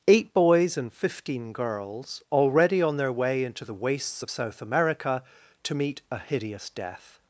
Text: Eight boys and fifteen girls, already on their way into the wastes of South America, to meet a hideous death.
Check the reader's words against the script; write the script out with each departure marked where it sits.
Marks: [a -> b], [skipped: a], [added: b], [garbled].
Eight boys and fifteen girls, already on their way into the wastes of South America, to meet a hideous death.